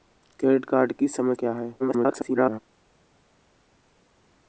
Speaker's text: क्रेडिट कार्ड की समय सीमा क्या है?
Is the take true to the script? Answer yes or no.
no